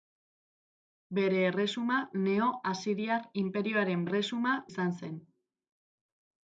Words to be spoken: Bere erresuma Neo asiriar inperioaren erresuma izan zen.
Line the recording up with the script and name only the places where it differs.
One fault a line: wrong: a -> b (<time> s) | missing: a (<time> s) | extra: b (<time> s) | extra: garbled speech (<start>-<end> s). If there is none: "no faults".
no faults